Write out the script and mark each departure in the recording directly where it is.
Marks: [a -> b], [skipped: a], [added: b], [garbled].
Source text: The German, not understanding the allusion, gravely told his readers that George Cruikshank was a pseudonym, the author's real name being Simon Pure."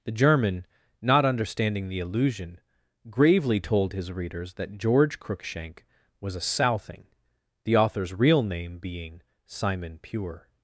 The German, not understanding the allusion, gravely told his readers that George Cruikshank was a [pseudonym, -> southing] the author's real name being Simon Pure."